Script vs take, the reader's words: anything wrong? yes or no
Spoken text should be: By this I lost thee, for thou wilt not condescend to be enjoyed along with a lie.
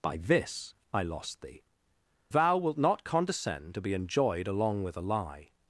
yes